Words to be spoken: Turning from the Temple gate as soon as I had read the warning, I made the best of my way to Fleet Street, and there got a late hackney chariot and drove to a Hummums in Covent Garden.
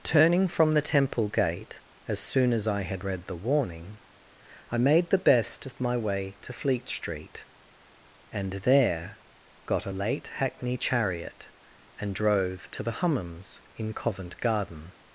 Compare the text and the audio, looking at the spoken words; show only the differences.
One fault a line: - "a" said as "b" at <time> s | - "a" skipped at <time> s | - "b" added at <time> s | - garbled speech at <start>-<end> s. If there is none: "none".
- "a" said as "the" at 12.8 s